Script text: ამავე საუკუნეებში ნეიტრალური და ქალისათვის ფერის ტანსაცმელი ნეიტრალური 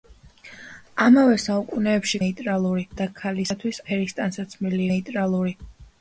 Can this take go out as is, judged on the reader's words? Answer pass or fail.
pass